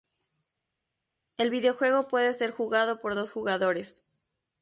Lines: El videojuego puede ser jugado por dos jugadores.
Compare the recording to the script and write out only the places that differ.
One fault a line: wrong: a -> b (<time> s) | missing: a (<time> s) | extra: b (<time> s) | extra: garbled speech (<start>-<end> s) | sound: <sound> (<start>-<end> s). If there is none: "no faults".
no faults